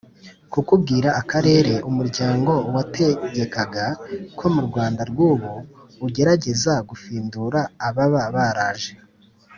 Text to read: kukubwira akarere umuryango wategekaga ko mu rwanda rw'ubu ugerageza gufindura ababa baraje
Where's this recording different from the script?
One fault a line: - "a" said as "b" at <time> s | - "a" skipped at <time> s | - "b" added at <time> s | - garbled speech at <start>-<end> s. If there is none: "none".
none